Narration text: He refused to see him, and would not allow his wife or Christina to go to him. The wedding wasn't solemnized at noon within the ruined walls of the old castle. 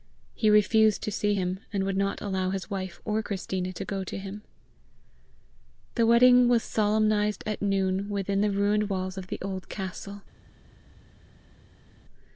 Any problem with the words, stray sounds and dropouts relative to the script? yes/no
yes